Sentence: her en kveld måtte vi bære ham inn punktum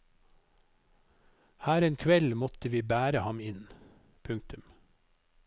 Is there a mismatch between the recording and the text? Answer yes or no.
no